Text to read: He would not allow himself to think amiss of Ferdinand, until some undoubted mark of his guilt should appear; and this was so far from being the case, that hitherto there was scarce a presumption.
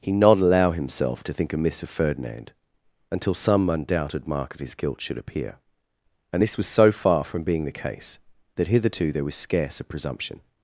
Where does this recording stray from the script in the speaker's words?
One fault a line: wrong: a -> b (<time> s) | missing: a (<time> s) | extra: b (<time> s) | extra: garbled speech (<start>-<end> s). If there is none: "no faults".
missing: would (0.1 s)